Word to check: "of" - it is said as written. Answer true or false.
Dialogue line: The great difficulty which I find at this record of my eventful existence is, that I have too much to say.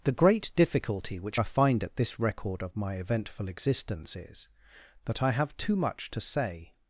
true